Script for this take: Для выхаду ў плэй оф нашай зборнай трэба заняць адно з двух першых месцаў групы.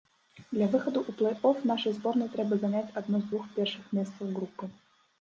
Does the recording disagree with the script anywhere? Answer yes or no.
no